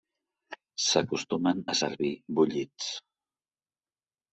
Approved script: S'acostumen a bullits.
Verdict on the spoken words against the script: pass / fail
fail